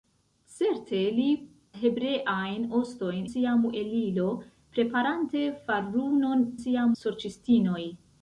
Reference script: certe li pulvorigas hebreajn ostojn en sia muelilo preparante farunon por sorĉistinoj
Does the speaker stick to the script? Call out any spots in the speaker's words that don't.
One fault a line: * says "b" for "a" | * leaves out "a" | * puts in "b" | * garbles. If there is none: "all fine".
* leaves out "pulvorigas"
* leaves out "en"
* says "sia" for "por"